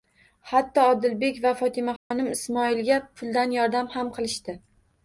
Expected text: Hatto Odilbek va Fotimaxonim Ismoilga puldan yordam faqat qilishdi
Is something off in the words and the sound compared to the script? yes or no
yes